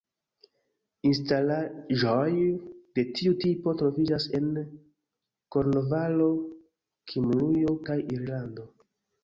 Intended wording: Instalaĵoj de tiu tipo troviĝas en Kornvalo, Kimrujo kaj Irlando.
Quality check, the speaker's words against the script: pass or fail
pass